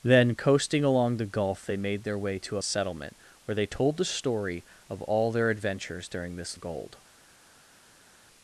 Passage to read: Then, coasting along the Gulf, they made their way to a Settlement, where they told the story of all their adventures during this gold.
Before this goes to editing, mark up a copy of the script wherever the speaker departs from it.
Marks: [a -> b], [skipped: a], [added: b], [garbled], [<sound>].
Then, coasting along the Gulf, they made their way to a Settlement, where they told the story of all their adventures during this gold.